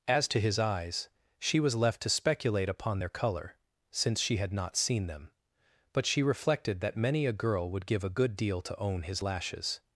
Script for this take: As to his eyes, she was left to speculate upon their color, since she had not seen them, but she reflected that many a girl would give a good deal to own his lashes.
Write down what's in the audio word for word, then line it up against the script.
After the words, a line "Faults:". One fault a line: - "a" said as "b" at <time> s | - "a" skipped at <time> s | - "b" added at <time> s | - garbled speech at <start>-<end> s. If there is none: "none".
As to his eyes, she was left to speculate upon their color, since she had not seen them, but she reflected that many a girl would give a good deal to own his lashes.
Faults:
none